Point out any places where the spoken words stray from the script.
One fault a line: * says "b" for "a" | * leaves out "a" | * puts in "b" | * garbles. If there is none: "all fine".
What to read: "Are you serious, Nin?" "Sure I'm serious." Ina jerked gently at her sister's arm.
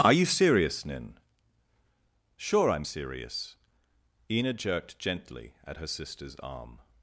all fine